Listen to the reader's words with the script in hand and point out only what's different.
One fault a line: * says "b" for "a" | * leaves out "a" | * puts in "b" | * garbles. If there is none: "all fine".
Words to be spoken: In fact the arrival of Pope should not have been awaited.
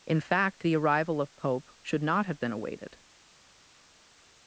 all fine